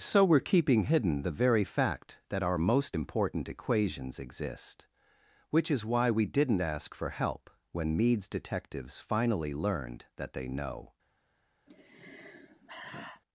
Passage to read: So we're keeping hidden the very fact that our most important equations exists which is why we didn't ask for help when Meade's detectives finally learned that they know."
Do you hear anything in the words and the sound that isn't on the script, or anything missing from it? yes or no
yes